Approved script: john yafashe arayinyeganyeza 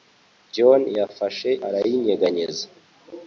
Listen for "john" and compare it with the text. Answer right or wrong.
right